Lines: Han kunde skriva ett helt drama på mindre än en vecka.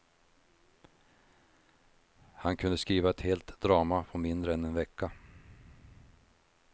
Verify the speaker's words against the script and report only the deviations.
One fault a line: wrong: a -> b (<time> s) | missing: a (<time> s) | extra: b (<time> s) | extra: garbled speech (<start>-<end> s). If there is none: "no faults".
no faults